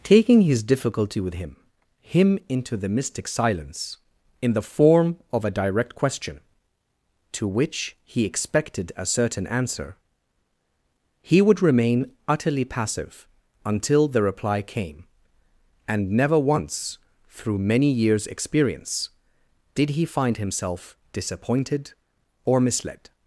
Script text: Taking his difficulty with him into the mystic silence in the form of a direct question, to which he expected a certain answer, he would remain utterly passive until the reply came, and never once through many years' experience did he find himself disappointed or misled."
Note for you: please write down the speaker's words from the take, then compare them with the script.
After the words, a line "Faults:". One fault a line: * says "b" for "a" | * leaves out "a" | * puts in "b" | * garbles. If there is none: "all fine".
Taking his difficulty with him him into the mystic silence in the form of a direct question, to which he expected a certain answer, he would remain utterly passive until the reply came, and never once through many years' experience did he find himself disappointed or misled."
Faults:
* puts in "him"